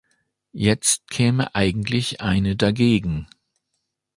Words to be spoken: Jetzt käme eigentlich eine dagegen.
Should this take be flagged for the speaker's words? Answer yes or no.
no